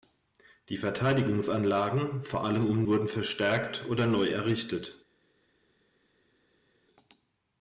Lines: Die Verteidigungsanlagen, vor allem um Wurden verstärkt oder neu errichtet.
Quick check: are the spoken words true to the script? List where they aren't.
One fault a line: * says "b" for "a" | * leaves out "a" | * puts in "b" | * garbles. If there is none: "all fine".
all fine